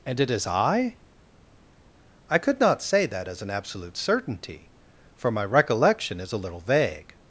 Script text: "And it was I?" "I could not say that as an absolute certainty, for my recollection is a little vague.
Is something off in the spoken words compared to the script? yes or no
yes